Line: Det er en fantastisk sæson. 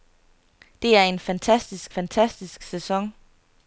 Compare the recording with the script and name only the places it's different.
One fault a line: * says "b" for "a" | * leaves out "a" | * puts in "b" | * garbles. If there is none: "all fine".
* puts in "fantastisk"